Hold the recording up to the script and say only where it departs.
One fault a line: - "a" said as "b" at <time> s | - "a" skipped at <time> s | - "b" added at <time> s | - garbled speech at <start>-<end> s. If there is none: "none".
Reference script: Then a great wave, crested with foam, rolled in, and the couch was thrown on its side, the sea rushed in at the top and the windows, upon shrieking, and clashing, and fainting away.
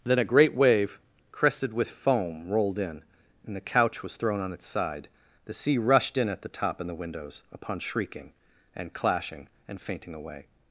none